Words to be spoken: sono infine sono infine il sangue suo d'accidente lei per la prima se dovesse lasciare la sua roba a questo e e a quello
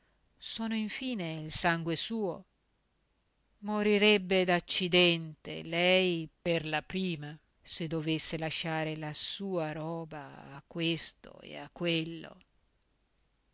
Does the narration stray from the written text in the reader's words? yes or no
yes